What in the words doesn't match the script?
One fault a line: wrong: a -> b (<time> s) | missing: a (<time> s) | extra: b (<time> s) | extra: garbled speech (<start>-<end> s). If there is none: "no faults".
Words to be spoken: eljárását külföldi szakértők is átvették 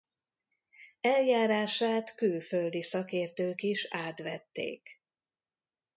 no faults